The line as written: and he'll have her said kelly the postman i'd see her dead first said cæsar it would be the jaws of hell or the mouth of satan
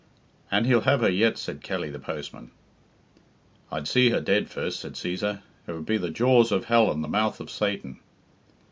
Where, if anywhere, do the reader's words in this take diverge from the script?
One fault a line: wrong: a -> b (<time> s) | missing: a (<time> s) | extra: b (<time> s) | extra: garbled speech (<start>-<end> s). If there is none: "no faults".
extra: yet (1.1 s)
wrong: or -> and (6.9 s)